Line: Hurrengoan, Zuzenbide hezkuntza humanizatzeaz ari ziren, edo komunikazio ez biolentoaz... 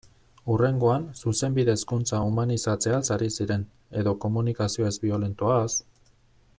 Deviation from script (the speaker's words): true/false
false